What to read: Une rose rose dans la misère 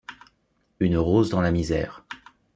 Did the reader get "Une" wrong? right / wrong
right